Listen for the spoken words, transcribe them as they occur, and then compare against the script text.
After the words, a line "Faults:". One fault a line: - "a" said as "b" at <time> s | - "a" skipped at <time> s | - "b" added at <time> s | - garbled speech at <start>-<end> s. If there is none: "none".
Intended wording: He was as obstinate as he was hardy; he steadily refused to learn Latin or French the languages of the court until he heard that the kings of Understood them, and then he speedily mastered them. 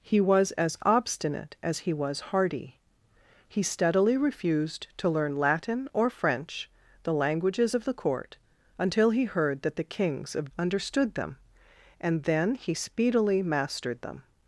He was as obstinate as he was hardy; he steadily refused to learn Latin or French the languages of the court until he heard that the kings of Understood them, and then he speedily mastered them.
Faults:
none